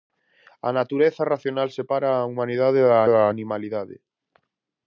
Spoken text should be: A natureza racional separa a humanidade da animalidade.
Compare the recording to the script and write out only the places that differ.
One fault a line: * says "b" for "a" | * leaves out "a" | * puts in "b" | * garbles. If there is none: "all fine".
* puts in "da"